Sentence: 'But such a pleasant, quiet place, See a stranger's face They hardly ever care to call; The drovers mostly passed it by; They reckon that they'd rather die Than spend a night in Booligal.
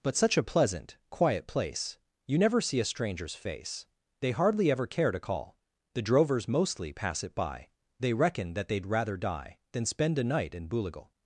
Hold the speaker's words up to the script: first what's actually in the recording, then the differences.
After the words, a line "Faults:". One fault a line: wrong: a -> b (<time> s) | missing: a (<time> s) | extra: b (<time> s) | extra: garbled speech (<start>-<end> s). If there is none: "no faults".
'But such a pleasant, quiet place, You never see a stranger's face They hardly ever care to call; The drovers mostly pass it by; They reckon that they'd rather die Than spend a night in Booligal.
Faults:
extra: You never (2.2 s)
wrong: passed -> pass (6.9 s)